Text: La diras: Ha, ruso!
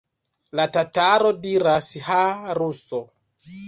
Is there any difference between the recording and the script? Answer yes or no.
yes